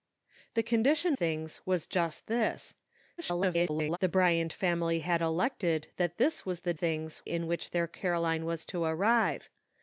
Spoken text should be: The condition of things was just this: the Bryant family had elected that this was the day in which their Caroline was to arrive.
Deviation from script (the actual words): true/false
true